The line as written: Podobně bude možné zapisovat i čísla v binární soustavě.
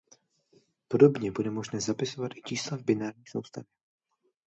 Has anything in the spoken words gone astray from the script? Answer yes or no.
no